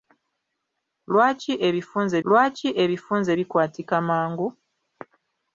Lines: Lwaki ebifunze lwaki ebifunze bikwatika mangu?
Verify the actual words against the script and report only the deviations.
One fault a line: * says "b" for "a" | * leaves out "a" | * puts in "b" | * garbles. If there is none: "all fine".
all fine